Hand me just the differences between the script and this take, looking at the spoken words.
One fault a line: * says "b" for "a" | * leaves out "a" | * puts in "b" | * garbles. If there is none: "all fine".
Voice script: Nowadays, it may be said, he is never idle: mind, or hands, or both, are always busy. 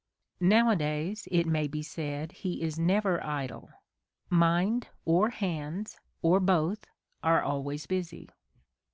all fine